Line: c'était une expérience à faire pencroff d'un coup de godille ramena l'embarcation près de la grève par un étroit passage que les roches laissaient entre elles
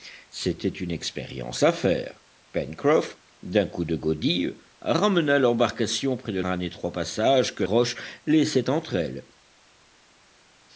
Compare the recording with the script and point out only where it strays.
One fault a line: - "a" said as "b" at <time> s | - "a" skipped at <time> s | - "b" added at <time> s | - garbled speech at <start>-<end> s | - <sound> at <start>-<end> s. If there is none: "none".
- "la grève par" skipped at 6.4 s
- "les" skipped at 7.6 s